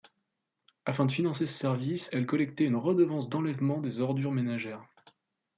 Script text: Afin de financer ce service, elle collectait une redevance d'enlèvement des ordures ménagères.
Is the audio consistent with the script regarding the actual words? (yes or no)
yes